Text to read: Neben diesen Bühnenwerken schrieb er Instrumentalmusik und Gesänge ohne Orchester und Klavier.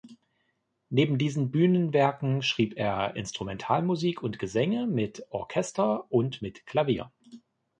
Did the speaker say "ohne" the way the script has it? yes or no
no